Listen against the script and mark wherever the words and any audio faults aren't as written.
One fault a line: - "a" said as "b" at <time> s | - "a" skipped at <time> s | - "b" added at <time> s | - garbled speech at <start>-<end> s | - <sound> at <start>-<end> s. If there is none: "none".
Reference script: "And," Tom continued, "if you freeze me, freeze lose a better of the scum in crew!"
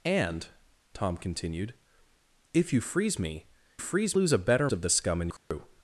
- dropout at 5.4-5.5 s